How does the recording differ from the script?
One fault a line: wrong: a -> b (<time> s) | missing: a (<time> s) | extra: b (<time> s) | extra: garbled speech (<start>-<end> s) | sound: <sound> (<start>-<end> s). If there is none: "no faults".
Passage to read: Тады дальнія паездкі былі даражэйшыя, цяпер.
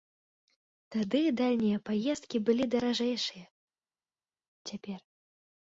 no faults